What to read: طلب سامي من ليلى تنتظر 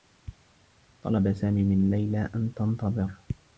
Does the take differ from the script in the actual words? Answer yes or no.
yes